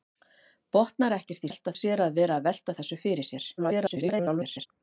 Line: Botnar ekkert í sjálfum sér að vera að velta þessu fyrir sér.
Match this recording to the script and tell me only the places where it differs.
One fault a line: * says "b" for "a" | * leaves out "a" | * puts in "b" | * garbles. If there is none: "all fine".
* says "velta" for "sjálfum"
* garbles